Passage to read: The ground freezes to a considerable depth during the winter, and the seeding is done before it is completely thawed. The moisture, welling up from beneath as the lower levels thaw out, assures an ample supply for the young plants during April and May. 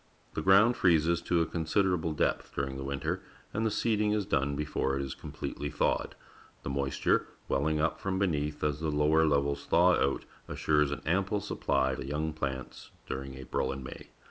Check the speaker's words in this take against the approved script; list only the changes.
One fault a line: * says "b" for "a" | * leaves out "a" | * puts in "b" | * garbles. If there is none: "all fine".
* leaves out "for"